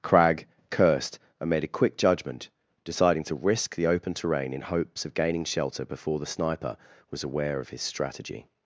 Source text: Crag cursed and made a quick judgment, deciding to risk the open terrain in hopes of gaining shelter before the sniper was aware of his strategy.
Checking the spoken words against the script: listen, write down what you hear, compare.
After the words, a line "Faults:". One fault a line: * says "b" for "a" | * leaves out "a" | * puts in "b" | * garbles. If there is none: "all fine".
Crag cursed and made a quick judgment, deciding to risk the open terrain in hopes of gaining shelter before the sniper was aware of his strategy.
Faults:
all fine